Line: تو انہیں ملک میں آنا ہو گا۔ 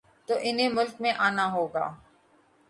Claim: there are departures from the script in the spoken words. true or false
false